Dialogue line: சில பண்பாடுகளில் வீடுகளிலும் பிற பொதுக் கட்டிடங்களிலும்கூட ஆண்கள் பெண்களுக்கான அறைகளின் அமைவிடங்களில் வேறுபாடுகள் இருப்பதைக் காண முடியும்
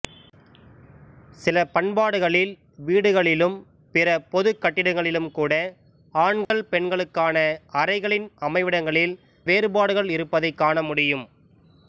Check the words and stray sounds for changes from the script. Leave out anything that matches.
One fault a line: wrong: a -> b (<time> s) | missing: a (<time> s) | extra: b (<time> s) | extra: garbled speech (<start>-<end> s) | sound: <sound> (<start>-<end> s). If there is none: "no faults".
sound: dropout (6.4-6.5 s)